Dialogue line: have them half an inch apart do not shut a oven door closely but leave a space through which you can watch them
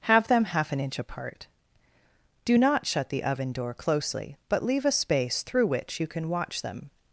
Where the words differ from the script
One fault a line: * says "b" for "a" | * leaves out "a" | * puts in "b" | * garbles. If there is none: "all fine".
* says "the" for "a"